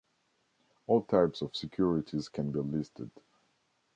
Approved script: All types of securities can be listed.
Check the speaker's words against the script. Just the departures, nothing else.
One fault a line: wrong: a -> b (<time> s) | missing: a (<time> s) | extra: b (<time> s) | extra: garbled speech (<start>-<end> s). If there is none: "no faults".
no faults